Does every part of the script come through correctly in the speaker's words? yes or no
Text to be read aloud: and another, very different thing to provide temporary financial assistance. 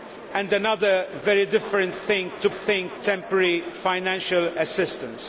no